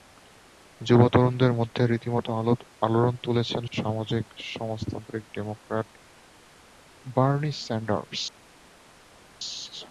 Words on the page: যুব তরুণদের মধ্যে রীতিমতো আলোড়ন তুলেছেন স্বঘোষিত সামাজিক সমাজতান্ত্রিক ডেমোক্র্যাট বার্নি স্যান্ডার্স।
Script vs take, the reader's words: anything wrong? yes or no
yes